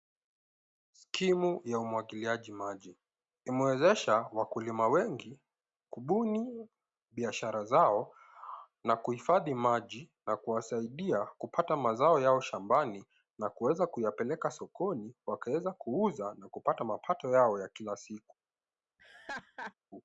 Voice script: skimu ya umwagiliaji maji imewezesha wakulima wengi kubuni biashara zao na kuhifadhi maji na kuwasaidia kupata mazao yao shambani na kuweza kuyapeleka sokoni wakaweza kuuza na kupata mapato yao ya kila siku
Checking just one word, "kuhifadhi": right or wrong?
right